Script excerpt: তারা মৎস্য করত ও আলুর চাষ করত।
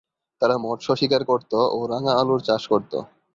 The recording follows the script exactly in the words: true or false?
false